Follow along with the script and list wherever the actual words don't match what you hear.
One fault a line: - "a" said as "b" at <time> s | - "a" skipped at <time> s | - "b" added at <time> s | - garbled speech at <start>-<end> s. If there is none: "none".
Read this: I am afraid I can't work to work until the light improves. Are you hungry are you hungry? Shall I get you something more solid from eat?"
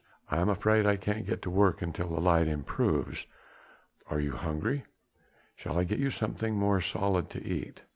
- "work" said as "get" at 1.3 s
- "are you hungry" skipped at 4.8 s
- "from" said as "to" at 7.3 s